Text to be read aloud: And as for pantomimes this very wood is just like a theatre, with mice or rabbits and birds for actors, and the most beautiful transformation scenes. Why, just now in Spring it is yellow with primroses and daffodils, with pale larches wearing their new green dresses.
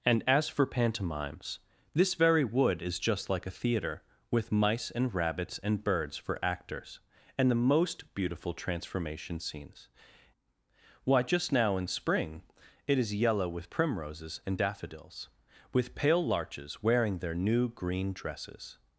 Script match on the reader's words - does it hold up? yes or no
no